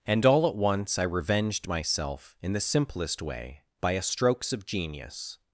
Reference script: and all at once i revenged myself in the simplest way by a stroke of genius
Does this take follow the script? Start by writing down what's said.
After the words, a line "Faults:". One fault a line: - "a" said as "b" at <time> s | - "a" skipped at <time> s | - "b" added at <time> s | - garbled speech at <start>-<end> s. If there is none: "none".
and all at once i revenged myself in the simplest way by a strokes of genius
Faults:
- "stroke" said as "strokes" at 4.0 s